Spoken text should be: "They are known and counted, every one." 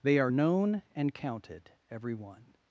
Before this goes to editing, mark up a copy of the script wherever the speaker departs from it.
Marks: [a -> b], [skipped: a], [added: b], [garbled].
"They are known and counted, every one."